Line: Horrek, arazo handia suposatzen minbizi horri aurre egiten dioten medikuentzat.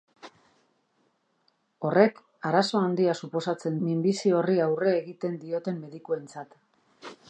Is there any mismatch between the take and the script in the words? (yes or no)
no